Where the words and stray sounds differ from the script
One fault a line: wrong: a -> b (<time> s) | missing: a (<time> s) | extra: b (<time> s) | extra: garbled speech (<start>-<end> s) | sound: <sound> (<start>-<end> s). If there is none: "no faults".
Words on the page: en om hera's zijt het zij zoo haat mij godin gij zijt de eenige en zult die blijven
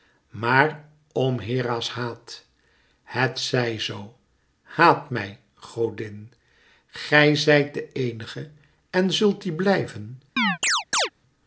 wrong: en -> maar (0.3 s)
wrong: zijt -> haat (1.9 s)
sound: chirp (10.4-11.1 s)